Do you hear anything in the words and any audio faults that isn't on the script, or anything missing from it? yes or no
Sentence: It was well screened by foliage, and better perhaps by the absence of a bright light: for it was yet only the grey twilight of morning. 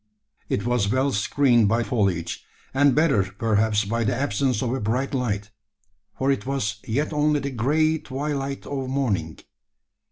no